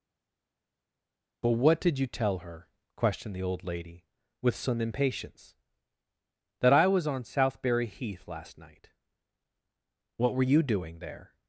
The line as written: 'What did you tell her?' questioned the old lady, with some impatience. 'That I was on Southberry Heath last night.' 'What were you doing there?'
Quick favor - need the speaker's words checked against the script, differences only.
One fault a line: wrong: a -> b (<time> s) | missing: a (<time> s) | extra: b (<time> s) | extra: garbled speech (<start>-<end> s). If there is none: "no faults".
extra: but (1.4 s)